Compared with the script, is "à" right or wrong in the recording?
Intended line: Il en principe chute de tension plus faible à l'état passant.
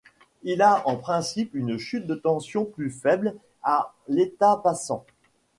right